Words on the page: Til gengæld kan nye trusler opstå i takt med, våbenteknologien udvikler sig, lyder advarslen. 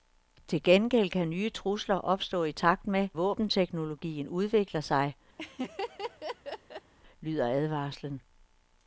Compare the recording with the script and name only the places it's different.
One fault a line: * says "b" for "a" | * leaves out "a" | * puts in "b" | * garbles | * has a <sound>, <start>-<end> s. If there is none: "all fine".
* has a laugh, 5.4-6.9 s